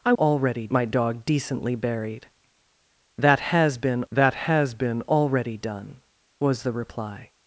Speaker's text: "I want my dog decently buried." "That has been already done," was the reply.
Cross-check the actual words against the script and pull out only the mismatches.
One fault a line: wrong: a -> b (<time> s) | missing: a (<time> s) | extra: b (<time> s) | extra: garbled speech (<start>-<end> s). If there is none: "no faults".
wrong: want -> already (0.1 s)
extra: that has been (4.1 s)